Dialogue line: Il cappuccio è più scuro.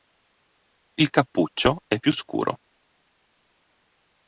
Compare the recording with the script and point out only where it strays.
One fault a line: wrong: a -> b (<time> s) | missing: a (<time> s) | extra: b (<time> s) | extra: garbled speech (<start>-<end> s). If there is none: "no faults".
no faults